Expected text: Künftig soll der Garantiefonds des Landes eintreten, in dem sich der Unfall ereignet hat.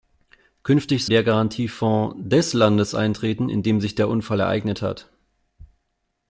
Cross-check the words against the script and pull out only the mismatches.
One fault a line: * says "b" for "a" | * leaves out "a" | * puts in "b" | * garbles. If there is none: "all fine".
* leaves out "soll"